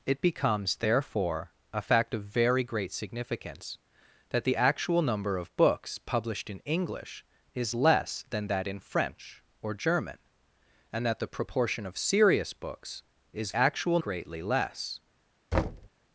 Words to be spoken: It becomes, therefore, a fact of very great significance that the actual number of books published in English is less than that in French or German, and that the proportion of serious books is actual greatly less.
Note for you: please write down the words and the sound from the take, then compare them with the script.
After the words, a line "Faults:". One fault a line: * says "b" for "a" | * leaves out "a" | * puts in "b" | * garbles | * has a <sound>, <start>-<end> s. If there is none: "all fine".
It becomes, therefore, a fact of very great significance that the actual number of books published in English is less than that in French or German, and that the proportion of serious books is actual greatly less.
Faults:
* has a thud, 15.5-15.9 s